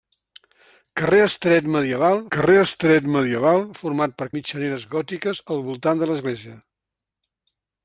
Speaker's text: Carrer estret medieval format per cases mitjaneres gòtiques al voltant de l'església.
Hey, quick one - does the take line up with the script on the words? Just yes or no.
no